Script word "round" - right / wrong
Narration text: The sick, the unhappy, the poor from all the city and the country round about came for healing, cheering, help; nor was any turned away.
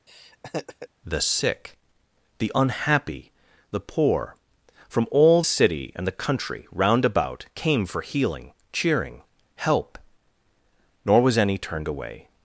right